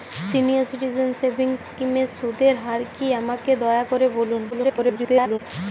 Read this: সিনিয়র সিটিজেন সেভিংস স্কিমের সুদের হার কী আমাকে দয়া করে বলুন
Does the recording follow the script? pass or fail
fail